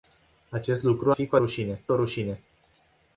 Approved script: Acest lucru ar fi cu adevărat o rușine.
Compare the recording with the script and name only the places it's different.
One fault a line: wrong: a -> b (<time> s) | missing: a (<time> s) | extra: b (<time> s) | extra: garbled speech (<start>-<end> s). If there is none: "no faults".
missing: ar (1.1 s)
wrong: adevărat -> rușine (1.4 s)